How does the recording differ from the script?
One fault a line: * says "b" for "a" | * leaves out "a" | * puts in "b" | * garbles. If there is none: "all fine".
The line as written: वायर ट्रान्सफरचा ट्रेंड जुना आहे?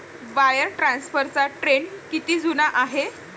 * puts in "किती"